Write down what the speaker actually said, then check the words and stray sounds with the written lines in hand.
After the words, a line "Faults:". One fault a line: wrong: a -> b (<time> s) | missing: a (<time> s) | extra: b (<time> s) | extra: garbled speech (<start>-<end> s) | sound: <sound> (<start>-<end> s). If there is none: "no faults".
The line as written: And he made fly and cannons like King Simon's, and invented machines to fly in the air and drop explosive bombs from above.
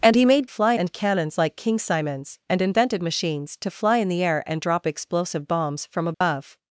And he made fly and cannons like King Simon's, and invented machines to fly in the air and drop explosive bombs from above.
Faults:
sound: dropout (6.1-6.2 s)